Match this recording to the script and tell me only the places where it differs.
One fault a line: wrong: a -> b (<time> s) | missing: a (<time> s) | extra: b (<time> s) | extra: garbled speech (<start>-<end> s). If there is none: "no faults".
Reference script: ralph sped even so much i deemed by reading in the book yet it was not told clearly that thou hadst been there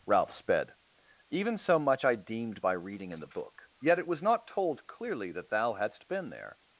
no faults